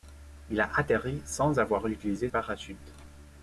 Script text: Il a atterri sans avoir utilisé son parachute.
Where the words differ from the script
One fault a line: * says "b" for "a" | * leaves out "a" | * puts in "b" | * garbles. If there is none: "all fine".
* leaves out "son"